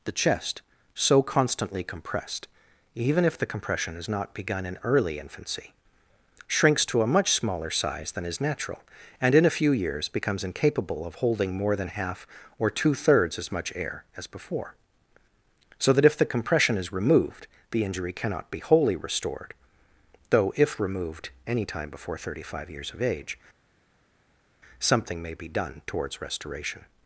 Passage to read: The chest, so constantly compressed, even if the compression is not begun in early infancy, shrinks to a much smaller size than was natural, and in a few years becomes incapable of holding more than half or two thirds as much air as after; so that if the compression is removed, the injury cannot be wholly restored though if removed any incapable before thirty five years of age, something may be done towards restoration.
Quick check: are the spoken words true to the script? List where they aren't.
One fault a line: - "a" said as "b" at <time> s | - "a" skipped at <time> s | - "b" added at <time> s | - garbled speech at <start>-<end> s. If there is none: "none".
- "was" said as "is" at 8.2 s
- "after" said as "before" at 14.3 s
- "incapable" said as "time" at 21.6 s